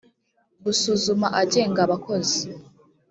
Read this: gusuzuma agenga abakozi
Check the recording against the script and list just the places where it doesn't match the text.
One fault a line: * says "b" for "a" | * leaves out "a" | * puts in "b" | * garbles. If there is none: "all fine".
all fine